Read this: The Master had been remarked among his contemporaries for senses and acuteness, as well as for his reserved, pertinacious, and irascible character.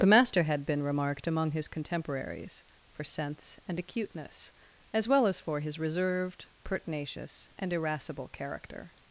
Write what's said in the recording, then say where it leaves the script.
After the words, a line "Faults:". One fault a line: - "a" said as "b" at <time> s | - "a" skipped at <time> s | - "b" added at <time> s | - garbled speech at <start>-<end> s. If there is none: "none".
The Master had been remarked among his contemporaries for sense and acuteness, as well as for his reserved, pertinacious, and irascible character.
Faults:
- "senses" said as "sense" at 3.0 s